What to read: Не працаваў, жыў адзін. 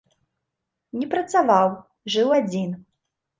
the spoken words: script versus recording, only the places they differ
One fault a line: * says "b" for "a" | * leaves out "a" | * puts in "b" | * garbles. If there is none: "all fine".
all fine